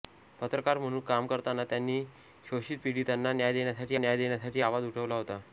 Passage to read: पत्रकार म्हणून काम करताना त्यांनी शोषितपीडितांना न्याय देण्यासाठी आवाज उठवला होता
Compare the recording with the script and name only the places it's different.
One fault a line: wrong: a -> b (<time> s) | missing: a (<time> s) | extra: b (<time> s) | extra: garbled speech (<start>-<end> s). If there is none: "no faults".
extra: न्याय देण्यासाठी (4.0 s)